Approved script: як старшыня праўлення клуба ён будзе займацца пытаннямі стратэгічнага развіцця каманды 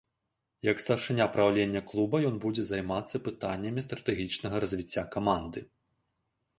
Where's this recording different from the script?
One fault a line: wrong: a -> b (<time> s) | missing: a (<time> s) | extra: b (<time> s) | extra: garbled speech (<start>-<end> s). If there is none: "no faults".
no faults